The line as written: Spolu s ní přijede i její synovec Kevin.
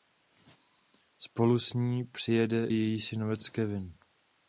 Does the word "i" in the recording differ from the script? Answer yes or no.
yes